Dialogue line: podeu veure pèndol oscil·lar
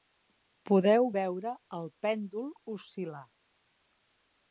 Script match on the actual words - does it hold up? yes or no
no